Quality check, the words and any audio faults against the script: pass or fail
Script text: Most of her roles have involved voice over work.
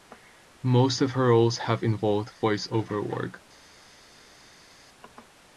pass